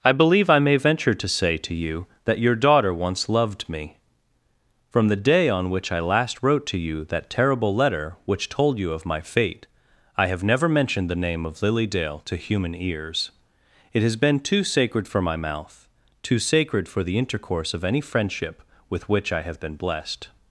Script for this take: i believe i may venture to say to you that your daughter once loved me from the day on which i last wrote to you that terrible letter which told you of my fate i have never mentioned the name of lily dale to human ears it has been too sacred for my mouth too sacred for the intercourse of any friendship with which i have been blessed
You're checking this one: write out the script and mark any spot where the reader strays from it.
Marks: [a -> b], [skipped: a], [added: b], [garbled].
i believe i may venture to say to you that your daughter once loved me from the day on which i last wrote to you that terrible letter which told you of my fate i have never mentioned the name of lily dale to human ears it has been too sacred for my mouth too sacred for the intercourse of any friendship with which i have been blessed